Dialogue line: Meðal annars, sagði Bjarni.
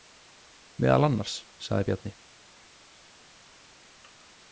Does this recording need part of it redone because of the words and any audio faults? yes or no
no